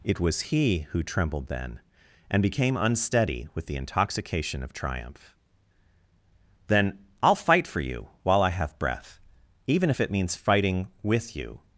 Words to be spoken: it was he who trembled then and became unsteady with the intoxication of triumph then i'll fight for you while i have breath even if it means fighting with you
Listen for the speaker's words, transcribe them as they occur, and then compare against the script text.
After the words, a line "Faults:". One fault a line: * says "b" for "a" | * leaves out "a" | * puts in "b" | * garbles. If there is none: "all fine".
it was he who trembled then and became unsteady with the intoxication of triumph then i'll fight for you while i have breath even if it means fighting with you
Faults:
all fine